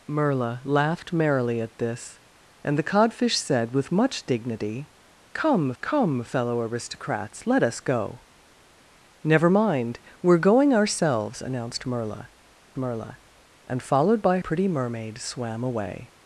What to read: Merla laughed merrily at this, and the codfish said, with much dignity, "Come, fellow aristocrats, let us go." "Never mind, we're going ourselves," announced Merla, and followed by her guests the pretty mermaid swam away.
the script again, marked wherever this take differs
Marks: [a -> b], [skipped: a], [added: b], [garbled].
Merla laughed merrily at this, and the codfish said, with much dignity, "Come, [added: come] fellow aristocrats, let us go." "Never mind, we're going ourselves," announced Merla, [added: Merla] and followed by [skipped: her guests the] pretty mermaid swam away.